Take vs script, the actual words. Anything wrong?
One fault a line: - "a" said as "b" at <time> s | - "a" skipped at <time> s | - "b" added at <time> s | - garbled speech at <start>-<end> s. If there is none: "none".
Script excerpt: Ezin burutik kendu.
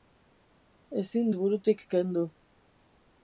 none